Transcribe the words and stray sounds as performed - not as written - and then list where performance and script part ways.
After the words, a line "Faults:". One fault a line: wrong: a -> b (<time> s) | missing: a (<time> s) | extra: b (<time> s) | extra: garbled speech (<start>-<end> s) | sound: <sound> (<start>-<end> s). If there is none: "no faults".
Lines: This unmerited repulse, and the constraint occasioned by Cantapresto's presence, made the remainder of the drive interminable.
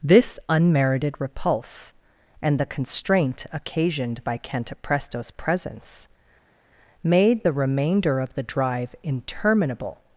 This unmerited repulse, and the constraint occasioned by Cantapresto's presence, made the remainder of the drive interminable.
Faults:
no faults